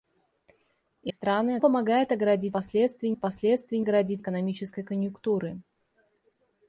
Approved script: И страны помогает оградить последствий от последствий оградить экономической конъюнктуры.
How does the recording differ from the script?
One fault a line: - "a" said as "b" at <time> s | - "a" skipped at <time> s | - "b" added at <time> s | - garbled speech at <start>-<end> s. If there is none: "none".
none